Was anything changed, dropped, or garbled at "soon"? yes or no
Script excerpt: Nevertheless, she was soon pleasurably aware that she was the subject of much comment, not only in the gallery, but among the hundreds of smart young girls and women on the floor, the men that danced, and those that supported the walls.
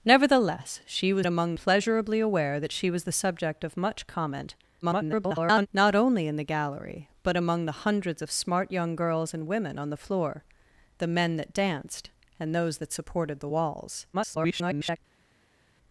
yes